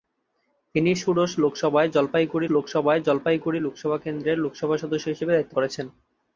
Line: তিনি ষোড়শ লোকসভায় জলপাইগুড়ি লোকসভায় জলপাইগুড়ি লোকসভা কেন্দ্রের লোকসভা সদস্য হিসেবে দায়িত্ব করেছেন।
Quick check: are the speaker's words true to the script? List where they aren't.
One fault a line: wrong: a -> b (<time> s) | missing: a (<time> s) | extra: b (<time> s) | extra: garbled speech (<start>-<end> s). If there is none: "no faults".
no faults